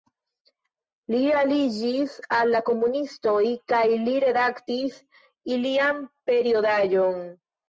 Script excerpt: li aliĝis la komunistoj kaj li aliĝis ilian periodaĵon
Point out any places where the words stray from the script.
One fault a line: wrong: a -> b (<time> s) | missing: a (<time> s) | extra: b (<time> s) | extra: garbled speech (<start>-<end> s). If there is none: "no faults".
extra: al (2.4 s)
wrong: aliĝis -> redaktis (4.3 s)